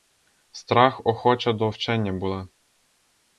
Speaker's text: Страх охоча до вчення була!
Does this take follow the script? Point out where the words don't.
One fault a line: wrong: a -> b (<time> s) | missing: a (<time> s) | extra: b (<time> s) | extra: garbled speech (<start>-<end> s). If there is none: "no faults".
no faults